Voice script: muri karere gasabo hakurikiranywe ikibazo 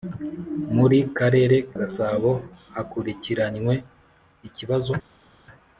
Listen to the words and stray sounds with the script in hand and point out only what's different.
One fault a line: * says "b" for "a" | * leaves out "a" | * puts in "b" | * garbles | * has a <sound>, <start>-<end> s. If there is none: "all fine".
all fine